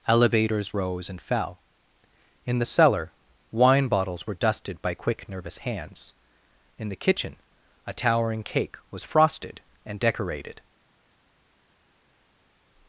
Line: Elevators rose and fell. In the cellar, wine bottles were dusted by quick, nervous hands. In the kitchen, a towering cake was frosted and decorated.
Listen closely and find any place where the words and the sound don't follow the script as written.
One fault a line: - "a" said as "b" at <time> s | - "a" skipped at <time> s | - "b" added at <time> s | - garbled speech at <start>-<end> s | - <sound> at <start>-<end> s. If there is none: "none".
none